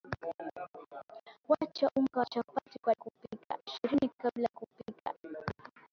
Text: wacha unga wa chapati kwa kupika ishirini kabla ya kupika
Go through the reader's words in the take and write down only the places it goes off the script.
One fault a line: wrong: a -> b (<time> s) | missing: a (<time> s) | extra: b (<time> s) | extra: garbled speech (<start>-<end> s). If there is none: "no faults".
no faults